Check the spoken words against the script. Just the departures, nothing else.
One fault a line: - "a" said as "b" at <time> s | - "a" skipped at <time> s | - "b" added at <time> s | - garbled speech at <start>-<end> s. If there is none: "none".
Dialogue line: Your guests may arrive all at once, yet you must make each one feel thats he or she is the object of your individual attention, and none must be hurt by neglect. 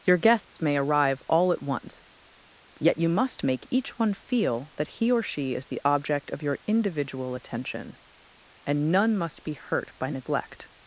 - "thats" said as "that" at 4.8 s